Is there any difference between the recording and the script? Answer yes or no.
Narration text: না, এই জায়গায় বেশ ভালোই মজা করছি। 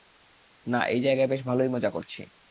no